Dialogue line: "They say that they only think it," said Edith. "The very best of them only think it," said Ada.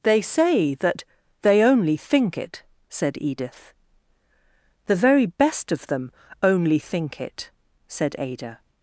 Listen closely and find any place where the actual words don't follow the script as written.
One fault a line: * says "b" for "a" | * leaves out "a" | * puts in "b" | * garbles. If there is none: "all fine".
all fine